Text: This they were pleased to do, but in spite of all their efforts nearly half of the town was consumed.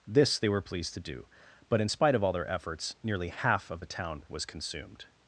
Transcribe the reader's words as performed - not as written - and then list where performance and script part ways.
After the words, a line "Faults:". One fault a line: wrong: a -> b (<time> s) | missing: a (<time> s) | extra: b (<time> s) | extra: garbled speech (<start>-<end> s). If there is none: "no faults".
This they were pleased to do, but in spite of all their efforts nearly half of the town was consumed.
Faults:
no faults